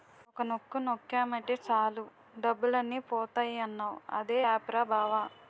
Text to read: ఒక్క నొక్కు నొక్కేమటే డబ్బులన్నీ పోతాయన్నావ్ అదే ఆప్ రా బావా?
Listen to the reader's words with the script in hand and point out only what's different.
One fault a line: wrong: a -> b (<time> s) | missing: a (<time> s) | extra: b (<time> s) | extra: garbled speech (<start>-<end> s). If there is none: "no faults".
extra: సాలు (1.6 s)